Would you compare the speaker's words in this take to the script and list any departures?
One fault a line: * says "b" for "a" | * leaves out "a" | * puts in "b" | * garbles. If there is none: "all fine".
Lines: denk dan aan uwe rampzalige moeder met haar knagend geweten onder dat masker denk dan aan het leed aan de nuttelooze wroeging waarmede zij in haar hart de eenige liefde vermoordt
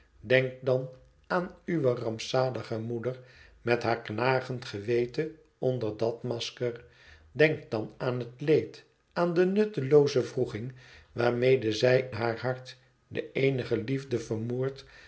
* leaves out "in"